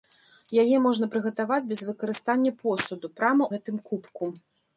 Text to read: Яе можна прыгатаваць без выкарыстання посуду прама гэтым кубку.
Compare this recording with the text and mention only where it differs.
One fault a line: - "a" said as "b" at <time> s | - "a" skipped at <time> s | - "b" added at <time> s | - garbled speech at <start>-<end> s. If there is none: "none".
none